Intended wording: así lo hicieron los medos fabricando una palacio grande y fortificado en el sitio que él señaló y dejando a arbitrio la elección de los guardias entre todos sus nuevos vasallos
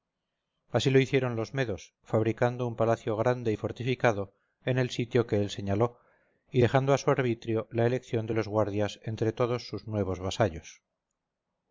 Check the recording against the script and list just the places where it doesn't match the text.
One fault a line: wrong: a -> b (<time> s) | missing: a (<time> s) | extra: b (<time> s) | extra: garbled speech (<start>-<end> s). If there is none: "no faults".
wrong: una -> un (2.6 s)
extra: su (7.0 s)